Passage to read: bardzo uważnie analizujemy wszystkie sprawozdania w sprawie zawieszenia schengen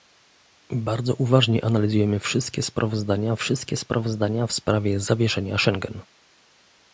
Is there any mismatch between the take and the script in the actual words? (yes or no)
yes